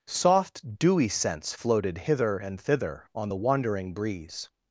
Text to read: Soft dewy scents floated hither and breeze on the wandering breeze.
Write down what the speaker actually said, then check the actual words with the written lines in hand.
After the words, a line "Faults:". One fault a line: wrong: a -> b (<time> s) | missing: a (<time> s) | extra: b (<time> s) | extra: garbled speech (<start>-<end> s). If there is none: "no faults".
Soft dewy scents floated hither and thither on the wandering breeze.
Faults:
wrong: breeze -> thither (2.6 s)